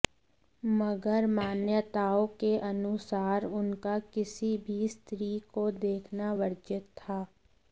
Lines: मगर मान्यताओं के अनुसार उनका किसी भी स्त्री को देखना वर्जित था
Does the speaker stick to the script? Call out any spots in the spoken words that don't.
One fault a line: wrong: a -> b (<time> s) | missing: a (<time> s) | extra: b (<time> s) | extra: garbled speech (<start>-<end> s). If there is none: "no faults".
no faults